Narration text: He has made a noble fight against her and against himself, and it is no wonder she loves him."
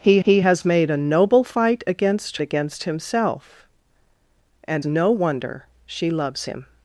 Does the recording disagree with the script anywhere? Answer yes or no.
yes